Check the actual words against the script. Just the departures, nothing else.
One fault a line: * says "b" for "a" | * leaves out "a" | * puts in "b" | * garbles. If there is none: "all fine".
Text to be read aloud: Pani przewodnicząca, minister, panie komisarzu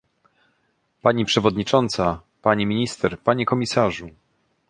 * puts in "pani"